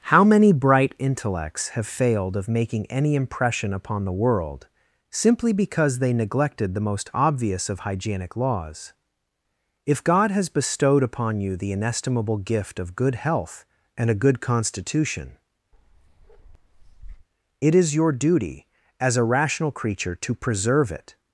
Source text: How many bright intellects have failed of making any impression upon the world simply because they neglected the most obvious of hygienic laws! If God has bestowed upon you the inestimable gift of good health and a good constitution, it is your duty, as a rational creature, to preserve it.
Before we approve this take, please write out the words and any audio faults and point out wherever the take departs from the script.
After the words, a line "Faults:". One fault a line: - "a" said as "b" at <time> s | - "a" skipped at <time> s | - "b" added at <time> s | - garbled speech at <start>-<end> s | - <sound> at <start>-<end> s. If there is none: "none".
How many bright intellects have failed of making any impression upon the world simply because they neglected the most obvious of hygienic laws! If God has bestowed upon you the inestimable gift of good health and a good constitution, it is your duty, as a rational creature, to preserve it.
Faults:
- bark at 15.7-17.3 s